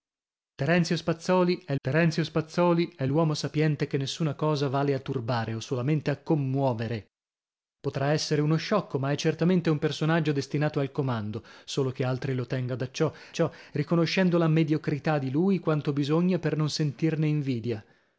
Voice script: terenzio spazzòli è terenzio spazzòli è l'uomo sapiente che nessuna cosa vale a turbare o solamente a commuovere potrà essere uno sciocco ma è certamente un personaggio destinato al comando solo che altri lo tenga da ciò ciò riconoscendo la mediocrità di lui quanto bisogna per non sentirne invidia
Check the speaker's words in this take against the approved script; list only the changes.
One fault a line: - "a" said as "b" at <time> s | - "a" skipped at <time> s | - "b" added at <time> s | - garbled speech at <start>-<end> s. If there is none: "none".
none